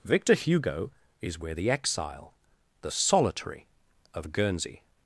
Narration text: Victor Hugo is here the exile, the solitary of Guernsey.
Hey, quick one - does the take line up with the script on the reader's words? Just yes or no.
no